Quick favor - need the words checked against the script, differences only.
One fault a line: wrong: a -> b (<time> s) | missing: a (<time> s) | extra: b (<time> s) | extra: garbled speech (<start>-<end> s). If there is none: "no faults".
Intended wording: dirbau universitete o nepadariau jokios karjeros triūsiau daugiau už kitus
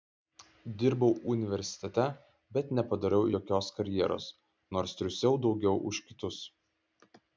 wrong: o -> bet (2.6 s)
extra: nors (4.8 s)